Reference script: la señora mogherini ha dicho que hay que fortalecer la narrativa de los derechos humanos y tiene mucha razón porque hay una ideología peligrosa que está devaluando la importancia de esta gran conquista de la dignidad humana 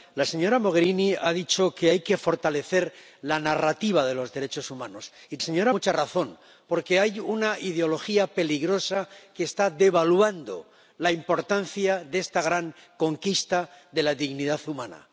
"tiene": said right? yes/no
no